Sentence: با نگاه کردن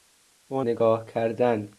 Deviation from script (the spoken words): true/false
false